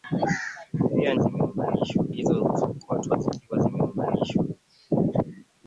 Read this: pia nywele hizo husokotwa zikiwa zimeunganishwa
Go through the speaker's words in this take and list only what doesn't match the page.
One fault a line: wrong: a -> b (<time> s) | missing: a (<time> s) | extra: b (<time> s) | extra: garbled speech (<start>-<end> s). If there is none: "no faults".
wrong: nywele -> zimeunganishwa (1.2 s)